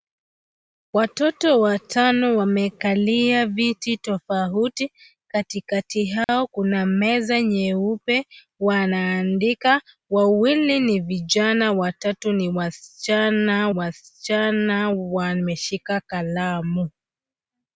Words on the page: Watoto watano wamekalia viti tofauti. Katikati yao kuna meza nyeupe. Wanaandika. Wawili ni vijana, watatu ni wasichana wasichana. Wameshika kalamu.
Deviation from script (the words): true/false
false